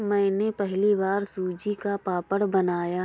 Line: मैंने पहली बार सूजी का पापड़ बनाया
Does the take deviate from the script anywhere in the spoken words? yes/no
no